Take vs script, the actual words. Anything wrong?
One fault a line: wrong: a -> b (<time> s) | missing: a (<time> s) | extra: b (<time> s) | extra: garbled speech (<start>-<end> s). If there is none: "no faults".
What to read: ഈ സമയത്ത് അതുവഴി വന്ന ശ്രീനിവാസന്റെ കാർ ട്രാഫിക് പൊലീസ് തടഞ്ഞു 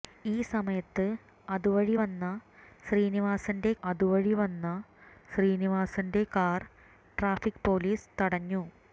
extra: അതുവഴി വന്ന ശ്രീനിവാസന്റെ (3.8 s)